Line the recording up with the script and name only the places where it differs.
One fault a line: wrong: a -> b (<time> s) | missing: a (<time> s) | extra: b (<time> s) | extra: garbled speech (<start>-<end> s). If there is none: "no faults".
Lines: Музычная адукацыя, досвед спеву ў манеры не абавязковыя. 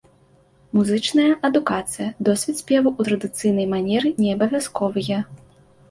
extra: традыцыйнай (3.1 s)